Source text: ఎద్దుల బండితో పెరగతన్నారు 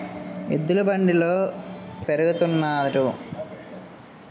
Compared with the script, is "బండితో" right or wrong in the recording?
right